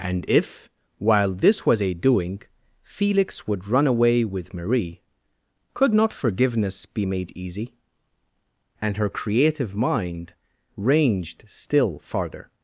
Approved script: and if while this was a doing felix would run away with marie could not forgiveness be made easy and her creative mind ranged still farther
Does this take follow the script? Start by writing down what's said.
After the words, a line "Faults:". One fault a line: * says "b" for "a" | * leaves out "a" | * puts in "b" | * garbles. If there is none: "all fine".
and if while this was a doing felix would run away with marie could not forgiveness be made easy and her creative mind ranged still farther
Faults:
all fine